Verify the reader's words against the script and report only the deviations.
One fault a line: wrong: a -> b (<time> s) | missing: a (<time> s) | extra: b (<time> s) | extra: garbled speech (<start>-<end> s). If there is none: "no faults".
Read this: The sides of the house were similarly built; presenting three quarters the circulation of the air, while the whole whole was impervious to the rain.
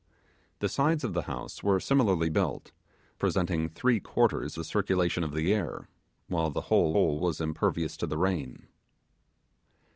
no faults